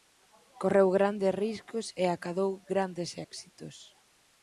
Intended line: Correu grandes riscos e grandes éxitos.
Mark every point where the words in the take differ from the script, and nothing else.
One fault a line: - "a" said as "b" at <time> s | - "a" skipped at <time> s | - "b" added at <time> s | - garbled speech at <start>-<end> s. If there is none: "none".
- "acadou" added at 2.1 s